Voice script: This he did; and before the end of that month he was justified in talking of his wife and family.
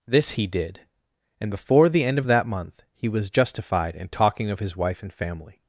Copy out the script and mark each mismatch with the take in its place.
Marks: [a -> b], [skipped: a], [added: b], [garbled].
This he did; and before the end of that month he was justified in talking of his wife and family.